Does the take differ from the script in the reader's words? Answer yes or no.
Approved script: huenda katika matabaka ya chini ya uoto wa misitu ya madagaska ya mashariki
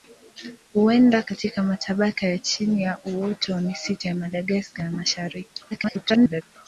yes